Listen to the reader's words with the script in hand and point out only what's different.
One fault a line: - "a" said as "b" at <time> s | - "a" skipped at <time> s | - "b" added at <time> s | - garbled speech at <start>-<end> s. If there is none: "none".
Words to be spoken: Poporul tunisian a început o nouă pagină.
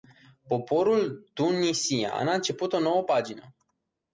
none